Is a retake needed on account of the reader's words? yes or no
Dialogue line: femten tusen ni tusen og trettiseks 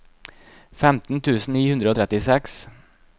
yes